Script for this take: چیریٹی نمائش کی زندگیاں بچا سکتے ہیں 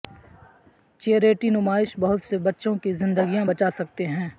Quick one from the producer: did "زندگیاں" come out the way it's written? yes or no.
yes